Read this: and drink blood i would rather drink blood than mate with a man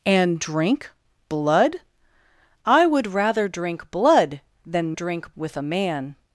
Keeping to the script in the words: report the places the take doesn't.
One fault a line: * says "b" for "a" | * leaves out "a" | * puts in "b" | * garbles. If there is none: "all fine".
* says "drink" for "mate"